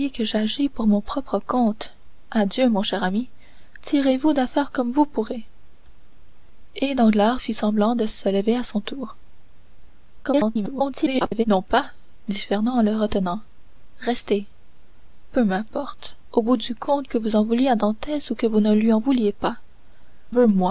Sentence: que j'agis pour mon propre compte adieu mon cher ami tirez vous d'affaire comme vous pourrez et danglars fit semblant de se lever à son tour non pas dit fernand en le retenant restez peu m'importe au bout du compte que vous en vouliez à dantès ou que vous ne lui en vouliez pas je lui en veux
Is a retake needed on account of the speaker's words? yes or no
yes